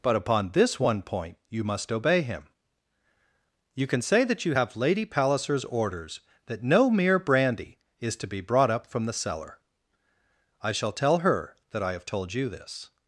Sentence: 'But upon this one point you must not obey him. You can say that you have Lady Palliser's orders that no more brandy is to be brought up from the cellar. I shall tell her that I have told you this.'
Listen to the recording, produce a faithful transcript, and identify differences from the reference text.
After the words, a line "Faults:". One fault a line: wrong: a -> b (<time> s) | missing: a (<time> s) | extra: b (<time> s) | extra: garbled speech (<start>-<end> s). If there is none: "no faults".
'But upon this one point you must obey him. You can say that you have Lady Palliser's orders that no mere brandy is to be brought up from the cellar. I shall tell her that I have told you this.'
Faults:
missing: not (1.9 s)
wrong: more -> mere (6.9 s)